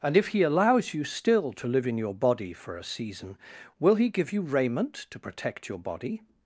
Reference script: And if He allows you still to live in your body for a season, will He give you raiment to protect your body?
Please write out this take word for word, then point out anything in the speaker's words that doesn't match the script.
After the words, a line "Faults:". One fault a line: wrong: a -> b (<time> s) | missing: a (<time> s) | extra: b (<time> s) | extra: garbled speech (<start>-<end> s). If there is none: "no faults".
And if He allows you still to live in your body for a season, will He give you raiment to protect your body?
Faults:
no faults